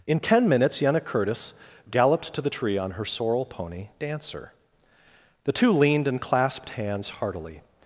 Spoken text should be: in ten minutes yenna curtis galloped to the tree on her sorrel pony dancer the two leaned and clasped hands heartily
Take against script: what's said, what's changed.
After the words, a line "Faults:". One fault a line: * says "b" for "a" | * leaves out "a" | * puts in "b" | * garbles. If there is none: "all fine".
in ten minutes yenna curtis galloped to the tree on her sorrel pony dancer the two leaned and clasped hands heartily
Faults:
all fine